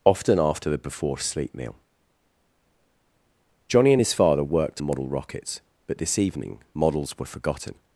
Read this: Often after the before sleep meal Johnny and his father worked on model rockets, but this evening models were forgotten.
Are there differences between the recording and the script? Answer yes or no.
yes